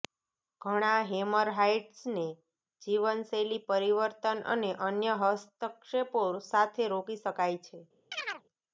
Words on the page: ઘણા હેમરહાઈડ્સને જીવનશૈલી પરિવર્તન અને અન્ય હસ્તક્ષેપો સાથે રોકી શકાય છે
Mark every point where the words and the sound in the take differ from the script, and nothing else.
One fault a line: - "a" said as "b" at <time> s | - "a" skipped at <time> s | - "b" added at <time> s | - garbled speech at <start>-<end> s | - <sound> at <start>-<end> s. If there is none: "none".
- chirp at 8.1-8.4 s